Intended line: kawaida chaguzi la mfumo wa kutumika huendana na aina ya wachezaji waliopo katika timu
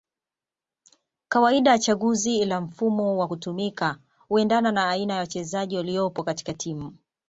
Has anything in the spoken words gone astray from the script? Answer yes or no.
no